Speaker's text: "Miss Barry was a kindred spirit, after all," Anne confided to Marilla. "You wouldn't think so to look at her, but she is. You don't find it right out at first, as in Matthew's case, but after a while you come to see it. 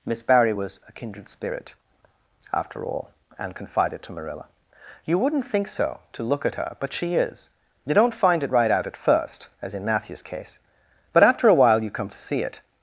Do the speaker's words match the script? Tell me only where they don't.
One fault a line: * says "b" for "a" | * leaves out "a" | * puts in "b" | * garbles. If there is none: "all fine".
all fine